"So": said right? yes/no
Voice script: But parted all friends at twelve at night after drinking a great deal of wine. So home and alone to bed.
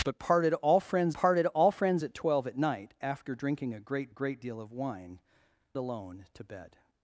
no